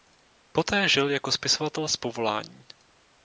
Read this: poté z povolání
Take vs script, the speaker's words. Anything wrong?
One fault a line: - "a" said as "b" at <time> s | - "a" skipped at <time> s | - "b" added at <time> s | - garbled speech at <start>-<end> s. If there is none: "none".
- "žil jako spisovatel" added at 0.9 s